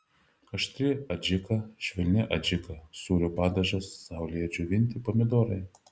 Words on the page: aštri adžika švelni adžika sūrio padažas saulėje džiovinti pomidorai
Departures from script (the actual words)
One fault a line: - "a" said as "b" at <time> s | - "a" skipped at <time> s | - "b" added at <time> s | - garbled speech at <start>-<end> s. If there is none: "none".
none